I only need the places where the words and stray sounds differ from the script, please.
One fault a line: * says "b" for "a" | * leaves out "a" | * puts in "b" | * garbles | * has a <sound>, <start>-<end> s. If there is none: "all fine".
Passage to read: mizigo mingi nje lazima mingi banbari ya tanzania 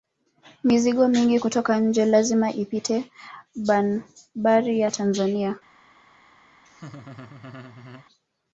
* puts in "kutoka"
* says "ipite" for "mingi"
* has a laugh, 6.6-8.1 s